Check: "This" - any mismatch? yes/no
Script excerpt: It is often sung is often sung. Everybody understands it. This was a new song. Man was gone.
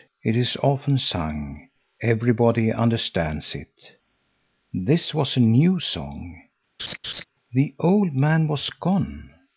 no